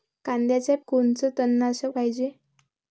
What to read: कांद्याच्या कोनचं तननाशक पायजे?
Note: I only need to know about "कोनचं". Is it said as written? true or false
true